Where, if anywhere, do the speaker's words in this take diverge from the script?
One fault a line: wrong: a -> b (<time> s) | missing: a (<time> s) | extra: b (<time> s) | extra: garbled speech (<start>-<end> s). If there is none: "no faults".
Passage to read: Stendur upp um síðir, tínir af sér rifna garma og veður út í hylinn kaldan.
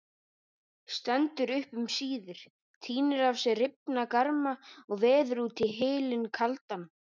no faults